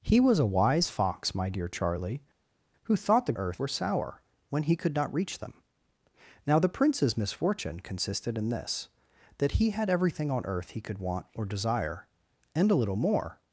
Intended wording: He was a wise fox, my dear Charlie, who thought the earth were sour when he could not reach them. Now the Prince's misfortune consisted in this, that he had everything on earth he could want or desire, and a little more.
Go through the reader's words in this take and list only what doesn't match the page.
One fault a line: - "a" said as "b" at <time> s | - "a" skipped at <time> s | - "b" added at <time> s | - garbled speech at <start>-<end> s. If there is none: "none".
none